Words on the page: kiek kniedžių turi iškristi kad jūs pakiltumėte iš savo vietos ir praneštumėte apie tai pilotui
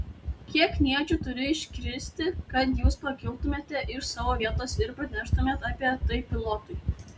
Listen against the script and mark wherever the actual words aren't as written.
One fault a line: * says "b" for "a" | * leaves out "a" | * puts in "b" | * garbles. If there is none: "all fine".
all fine